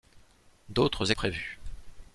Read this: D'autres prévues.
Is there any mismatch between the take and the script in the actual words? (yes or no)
no